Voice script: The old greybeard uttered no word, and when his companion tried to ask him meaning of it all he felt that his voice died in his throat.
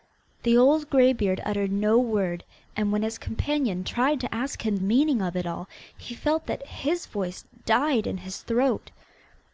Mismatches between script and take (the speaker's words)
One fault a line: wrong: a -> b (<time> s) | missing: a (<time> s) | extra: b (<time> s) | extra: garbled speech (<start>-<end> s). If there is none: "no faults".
no faults